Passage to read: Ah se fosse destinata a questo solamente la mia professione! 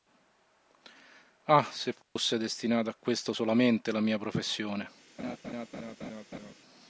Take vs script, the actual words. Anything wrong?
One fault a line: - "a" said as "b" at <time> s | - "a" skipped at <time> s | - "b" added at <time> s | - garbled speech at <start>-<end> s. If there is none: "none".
none